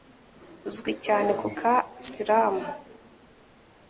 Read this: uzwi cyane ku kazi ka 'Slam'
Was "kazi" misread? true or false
true